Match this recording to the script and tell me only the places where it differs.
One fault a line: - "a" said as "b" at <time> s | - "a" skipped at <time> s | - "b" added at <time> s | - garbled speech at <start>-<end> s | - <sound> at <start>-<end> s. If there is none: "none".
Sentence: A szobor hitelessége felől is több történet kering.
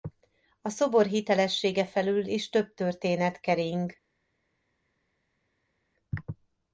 none